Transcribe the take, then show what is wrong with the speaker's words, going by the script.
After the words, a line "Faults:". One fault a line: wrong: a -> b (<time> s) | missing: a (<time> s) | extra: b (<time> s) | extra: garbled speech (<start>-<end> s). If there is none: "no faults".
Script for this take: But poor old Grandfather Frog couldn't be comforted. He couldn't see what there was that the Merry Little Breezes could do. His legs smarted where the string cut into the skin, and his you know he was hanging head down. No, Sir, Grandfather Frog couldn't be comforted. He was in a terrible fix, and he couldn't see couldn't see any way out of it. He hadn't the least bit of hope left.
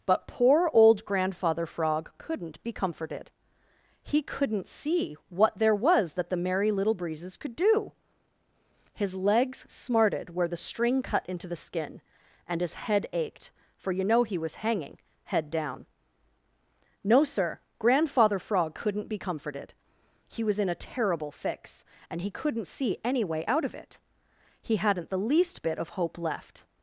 But poor old Grandfather Frog couldn't be comforted. He couldn't see what there was that the Merry Little Breezes could do. His legs smarted where the string cut into the skin, and his head ached, for you know he was hanging head down. No, Sir, Grandfather Frog couldn't be comforted. He was in a terrible fix, and he couldn't see any way out of it. He hadn't the least bit of hope left.
Faults:
extra: head ached for (12.7 s)
missing: couldn't see (23.0 s)